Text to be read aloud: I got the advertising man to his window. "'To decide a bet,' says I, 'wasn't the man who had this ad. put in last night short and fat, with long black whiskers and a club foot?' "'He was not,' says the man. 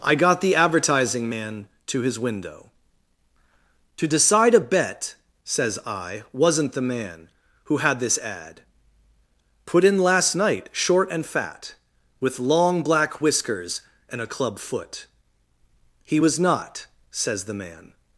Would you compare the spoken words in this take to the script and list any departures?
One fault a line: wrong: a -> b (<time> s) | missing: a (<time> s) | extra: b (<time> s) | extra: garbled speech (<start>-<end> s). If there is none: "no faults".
no faults